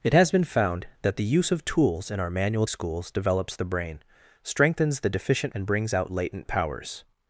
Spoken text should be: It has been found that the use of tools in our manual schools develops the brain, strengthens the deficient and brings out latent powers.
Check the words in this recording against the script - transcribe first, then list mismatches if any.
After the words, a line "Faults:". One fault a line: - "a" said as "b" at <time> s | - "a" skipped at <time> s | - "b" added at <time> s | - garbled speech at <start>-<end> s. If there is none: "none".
It has been found that the use of tools in our manual schools develops the brain, strengthens the deficient and brings out latent powers.
Faults:
none